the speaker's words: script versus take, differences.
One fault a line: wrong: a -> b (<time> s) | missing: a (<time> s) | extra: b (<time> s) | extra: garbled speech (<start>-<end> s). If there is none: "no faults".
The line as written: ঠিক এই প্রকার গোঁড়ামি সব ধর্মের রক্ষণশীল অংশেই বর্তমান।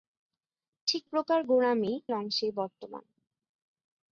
missing: এই (1.0 s)
missing: সব ধর্মের রক্ষণশীল (1.9 s)